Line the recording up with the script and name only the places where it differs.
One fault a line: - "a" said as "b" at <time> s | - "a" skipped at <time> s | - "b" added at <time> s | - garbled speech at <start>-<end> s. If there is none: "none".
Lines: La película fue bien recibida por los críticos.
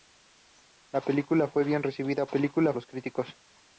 - "por" said as "película" at 2.3 s